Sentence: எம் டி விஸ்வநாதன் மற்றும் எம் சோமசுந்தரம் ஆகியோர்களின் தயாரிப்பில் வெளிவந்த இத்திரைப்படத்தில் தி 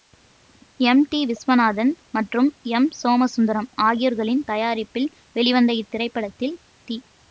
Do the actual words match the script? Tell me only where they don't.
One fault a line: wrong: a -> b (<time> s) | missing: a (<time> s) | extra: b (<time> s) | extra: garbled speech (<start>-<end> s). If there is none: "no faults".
no faults